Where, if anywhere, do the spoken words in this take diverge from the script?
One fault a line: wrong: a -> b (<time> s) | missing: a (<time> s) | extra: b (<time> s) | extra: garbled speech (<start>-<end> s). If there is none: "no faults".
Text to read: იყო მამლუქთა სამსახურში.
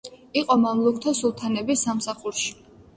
extra: სულთნების (1.2 s)